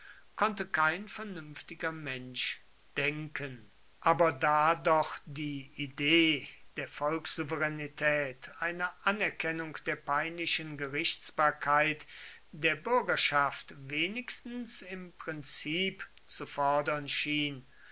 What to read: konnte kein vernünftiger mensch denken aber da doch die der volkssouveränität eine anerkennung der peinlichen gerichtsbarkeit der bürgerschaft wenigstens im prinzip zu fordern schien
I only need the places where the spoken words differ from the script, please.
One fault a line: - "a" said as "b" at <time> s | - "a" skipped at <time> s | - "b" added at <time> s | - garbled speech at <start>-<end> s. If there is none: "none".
- "idee" added at 5.8 s